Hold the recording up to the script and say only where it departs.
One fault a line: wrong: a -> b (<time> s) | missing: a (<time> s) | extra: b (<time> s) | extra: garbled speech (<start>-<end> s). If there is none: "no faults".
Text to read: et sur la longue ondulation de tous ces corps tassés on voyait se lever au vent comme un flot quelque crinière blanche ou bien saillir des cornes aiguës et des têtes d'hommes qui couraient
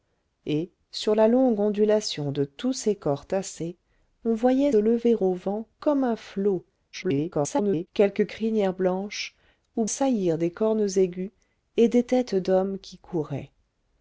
missing: se (4.7 s)
extra: garbled speech (6.9-7.9 s)
missing: bien (9.8 s)